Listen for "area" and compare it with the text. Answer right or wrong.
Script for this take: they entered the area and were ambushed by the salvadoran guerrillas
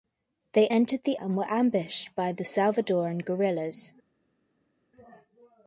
wrong